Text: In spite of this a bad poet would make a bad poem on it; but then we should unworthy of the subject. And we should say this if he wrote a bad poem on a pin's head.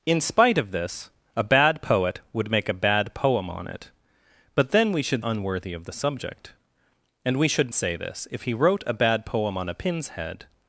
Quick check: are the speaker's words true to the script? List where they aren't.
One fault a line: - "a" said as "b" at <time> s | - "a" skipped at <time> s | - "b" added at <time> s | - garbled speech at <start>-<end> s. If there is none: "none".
none